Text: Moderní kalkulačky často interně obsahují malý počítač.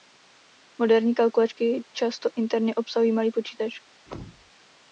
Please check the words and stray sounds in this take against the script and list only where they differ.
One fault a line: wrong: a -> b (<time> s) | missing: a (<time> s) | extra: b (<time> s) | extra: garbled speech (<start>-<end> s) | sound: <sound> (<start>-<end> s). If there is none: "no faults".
sound: thud (4.1-4.5 s)